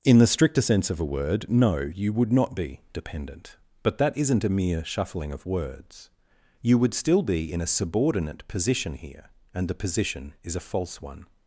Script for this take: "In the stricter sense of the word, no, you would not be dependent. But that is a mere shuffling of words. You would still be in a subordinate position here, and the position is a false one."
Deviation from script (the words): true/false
true